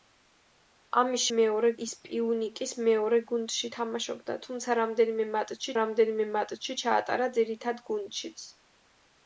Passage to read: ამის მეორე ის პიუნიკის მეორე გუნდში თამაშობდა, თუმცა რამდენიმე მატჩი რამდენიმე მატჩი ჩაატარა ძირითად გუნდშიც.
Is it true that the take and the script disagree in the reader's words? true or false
false